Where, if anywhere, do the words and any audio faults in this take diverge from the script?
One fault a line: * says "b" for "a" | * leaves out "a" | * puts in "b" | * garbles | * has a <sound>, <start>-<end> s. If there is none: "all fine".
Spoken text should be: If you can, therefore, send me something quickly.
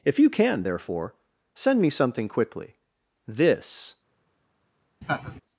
* puts in "This"
* has a laugh, 5.0-5.4 s